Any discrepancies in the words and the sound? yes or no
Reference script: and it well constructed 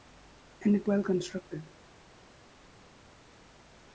no